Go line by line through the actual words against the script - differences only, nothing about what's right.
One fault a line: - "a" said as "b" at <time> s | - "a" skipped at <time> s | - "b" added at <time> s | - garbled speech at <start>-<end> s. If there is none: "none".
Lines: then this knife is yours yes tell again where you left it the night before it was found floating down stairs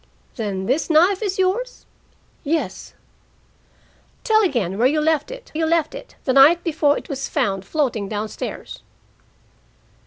- "you left it" added at 5.5 s